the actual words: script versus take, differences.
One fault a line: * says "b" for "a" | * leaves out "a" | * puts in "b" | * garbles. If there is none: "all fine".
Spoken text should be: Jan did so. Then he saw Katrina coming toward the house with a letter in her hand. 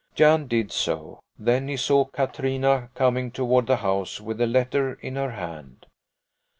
all fine